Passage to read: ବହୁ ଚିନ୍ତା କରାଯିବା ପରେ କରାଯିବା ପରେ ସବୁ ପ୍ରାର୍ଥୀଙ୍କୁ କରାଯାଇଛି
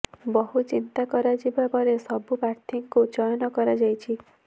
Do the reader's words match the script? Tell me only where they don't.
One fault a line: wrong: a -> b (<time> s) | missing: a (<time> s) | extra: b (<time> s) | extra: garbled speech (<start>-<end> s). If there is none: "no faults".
missing: କରାଯିବା ପରେ (1.9 s)
extra: ଚୟନ (3.1 s)